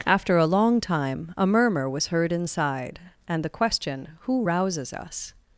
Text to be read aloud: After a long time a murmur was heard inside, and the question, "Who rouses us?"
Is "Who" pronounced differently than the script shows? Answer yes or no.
no